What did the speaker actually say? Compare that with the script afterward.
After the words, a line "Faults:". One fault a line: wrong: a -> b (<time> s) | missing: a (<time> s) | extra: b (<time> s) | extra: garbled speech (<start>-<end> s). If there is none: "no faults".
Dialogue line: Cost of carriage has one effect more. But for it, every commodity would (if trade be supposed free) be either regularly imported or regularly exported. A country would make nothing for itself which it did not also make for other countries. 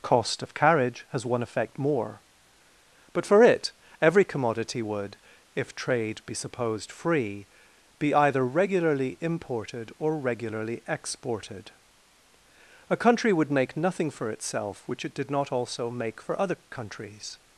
Cost of carriage has one effect more. But for it, every commodity would (if trade be supposed free) be either regularly imported or regularly exported. A country would make nothing for itself which it did not also make for other countries.
Faults:
no faults